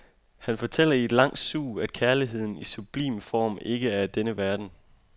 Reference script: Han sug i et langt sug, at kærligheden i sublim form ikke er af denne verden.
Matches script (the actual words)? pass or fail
fail